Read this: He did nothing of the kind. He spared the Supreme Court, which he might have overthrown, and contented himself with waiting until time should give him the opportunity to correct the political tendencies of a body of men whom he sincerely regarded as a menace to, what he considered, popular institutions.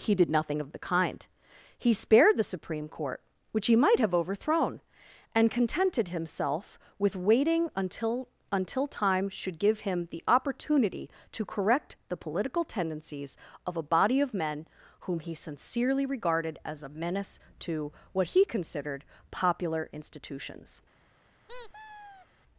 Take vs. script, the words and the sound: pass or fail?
fail